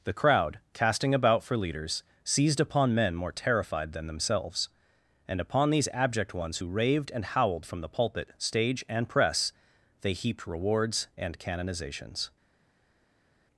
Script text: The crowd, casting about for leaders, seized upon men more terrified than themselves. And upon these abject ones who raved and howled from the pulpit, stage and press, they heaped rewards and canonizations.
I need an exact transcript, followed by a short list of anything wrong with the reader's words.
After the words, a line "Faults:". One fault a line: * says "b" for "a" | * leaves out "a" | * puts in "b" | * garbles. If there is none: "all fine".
The crowd, casting about for leaders, seized upon men more terrified than themselves. And upon these abject ones who raved and howled from the pulpit, stage and press, they heaped rewards and canonizations.
Faults:
all fine